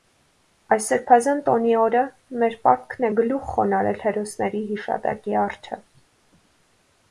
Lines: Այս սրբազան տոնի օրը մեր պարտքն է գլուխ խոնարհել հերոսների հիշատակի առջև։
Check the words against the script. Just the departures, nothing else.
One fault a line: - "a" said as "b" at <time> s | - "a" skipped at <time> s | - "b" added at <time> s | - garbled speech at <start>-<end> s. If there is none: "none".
none